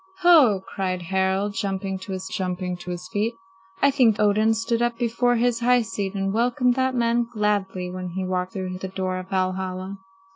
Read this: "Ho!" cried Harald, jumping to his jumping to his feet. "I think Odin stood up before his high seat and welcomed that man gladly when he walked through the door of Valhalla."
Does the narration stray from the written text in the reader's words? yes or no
no